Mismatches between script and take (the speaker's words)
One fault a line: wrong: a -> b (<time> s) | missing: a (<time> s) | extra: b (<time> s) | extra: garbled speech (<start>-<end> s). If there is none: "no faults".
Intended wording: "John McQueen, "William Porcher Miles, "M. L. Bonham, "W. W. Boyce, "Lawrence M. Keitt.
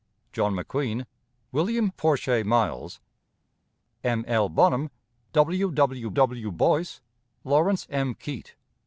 extra: w (6.1 s)